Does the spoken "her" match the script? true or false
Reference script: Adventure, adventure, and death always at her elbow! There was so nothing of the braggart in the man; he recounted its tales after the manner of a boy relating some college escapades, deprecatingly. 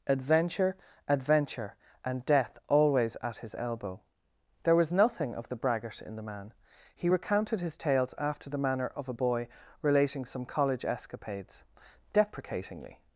false